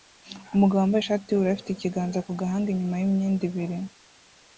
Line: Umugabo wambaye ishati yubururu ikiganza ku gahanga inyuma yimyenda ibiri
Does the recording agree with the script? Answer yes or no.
no